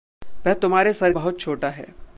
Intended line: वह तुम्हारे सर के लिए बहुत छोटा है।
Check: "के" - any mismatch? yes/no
yes